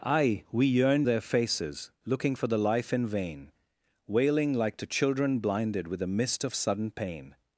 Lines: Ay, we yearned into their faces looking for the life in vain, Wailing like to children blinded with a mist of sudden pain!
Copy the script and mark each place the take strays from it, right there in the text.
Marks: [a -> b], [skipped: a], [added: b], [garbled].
Ay, we yearned [skipped: into] their faces looking for the life in vain, Wailing like to children blinded with a mist of sudden pain!